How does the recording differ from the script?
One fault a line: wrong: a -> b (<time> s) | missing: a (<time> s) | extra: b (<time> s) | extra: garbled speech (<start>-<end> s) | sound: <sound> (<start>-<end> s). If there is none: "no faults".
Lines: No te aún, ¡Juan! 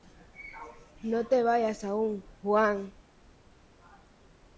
extra: vayas (1.4 s)